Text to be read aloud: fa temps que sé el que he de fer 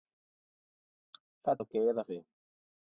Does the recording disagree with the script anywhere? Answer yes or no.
yes